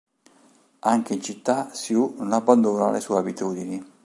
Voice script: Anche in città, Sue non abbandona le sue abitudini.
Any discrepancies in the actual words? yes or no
no